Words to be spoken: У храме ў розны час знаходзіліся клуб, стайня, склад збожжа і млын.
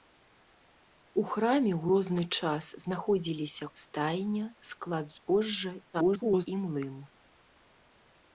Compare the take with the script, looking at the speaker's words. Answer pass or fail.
fail